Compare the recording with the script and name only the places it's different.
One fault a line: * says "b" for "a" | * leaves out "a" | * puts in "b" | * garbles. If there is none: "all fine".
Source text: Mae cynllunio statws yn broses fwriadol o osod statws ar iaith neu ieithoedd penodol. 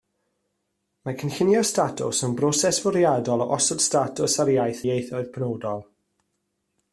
* leaves out "neu"